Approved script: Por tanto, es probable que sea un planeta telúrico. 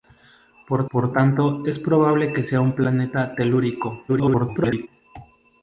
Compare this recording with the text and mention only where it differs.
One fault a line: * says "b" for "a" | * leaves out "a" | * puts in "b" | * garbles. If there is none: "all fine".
* puts in "por"
* garbles